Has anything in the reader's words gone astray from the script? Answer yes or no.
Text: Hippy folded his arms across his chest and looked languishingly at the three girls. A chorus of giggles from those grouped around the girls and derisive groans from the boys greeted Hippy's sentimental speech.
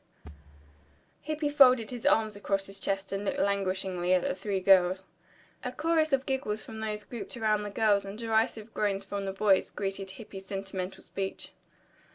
no